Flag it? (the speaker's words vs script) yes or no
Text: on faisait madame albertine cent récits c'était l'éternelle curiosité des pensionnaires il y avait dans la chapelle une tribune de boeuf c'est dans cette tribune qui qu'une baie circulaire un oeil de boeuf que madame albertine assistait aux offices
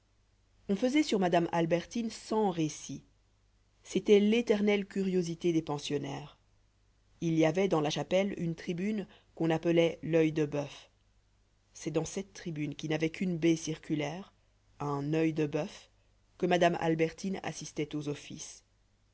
yes